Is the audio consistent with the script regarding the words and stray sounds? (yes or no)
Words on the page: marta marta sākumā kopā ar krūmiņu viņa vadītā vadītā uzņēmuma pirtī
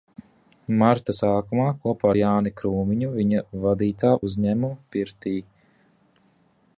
no